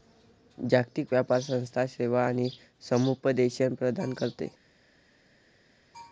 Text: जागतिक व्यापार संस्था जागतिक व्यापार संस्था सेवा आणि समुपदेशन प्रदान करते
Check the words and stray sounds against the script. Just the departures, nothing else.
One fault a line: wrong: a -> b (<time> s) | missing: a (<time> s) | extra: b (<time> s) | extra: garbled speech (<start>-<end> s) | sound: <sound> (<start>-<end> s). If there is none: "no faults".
missing: जागतिक व्यापार संस्था (1.8 s)